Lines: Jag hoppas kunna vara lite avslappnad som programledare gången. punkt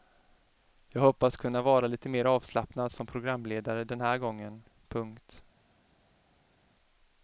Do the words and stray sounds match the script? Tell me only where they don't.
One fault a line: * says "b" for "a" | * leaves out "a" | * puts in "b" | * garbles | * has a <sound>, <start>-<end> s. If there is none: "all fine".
* puts in "mer"
* puts in "den här"